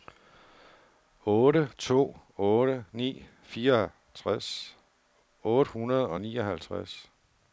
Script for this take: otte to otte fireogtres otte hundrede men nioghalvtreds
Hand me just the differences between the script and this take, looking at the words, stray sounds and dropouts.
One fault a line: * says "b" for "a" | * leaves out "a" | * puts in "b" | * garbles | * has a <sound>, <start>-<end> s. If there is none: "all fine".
* puts in "ni"
* says "og" for "men"